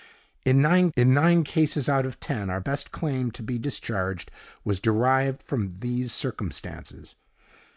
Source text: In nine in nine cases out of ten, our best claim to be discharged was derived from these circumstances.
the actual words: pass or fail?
pass